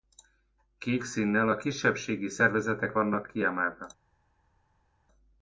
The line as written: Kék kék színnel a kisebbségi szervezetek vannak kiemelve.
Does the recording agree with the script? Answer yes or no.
no